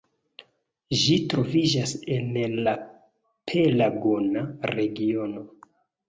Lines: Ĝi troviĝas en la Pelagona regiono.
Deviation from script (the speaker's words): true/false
false